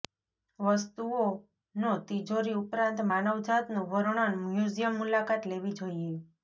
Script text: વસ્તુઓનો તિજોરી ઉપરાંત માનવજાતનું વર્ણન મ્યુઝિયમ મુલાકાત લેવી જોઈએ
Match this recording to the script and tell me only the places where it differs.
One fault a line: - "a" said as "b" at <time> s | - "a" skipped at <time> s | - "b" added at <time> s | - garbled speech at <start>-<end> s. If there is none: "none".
none